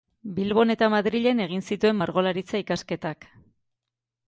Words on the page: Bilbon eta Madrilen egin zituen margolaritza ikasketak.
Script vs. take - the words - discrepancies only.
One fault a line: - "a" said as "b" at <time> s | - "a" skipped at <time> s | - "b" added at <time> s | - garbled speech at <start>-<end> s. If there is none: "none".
none